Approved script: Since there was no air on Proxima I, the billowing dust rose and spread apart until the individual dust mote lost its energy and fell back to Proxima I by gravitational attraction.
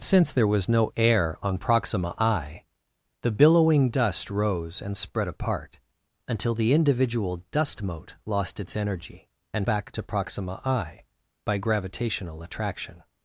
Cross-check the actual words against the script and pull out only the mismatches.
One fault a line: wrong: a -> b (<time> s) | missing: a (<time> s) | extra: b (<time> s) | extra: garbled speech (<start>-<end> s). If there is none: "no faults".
missing: fell (9.7 s)